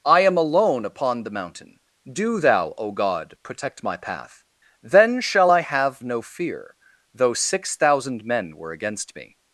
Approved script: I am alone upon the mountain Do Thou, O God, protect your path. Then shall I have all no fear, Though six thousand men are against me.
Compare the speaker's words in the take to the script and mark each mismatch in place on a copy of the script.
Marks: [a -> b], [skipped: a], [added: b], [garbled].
I am alone upon the mountain Do Thou, O God, protect [your -> my] path. Then shall I have [skipped: all] no fear, Though six thousand men [are -> were] against me.